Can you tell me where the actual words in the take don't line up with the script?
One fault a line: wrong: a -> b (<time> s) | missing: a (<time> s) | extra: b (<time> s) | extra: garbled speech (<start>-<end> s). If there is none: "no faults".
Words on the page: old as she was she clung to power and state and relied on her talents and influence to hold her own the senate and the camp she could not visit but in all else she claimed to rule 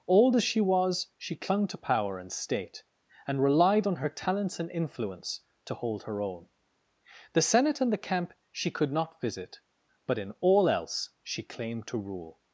no faults